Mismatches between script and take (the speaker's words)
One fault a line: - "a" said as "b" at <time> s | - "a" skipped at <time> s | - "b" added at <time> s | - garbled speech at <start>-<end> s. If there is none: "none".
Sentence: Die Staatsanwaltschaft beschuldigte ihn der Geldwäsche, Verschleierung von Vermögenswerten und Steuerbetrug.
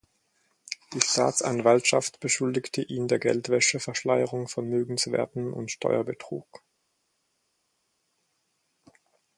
none